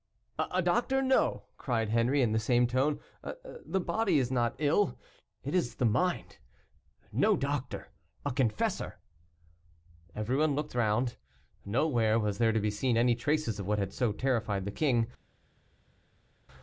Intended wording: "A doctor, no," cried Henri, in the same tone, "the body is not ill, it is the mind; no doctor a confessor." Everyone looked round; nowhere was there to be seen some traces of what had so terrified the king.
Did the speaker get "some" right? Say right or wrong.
wrong